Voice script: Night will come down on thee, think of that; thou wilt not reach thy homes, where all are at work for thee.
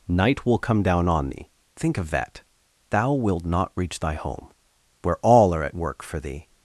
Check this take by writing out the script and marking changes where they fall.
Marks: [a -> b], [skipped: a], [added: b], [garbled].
Night will come down on thee, think of that; thou wilt not reach thy [homes, -> home] where all are at work for thee.